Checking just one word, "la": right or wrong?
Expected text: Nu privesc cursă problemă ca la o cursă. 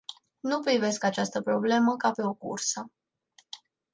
wrong